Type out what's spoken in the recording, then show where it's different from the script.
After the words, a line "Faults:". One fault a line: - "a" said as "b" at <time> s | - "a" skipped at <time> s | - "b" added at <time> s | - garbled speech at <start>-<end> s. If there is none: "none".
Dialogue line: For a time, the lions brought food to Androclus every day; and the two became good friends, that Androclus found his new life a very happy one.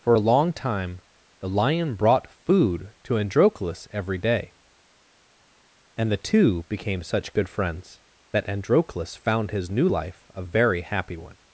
For a long time, the lion brought food to Androclus every day; and the two became such good friends, that Androclus found his new life a very happy one.
Faults:
- "long" added at 0.2 s
- "lions" said as "lion" at 1.5 s
- "such" added at 7.0 s